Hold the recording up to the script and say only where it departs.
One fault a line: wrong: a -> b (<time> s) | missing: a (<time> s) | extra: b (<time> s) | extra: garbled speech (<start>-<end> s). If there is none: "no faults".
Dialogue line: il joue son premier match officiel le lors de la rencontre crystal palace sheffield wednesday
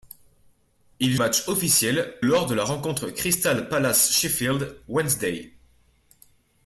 missing: joue son premier (1.1 s)
missing: le (2.2 s)